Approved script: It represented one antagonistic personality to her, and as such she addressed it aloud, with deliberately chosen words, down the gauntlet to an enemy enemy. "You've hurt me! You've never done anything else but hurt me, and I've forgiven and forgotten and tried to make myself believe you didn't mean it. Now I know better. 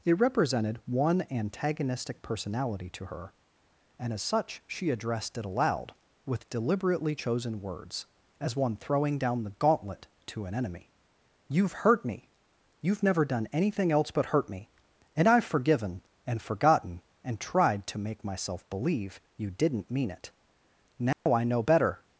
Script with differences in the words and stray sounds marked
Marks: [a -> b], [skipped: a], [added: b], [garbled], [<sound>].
It represented one antagonistic personality to her, and as such she addressed it aloud, with deliberately chosen words, [added: as one throwing] down the gauntlet to an enemy [skipped: enemy.] "You've hurt me! You've never done anything else but hurt me, and I've forgiven and forgotten and tried to make myself believe you didn't mean it. Now [dropout] I know better.